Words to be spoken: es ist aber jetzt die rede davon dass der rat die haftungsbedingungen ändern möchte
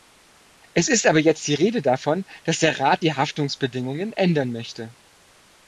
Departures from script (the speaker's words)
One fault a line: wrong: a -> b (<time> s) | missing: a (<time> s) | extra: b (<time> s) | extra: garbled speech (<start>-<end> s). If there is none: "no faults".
no faults